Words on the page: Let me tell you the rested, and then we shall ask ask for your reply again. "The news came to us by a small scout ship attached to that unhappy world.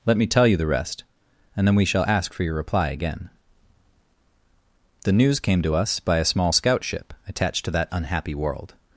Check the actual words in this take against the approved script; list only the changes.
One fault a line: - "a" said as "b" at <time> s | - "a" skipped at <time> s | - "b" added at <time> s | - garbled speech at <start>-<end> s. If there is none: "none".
- "rested" said as "rest" at 0.7 s
- "ask" skipped at 2.3 s